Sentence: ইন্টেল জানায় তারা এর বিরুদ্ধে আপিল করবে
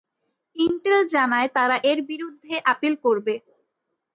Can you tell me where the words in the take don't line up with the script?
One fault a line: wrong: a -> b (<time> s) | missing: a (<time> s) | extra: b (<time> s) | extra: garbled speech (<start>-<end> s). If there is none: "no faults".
no faults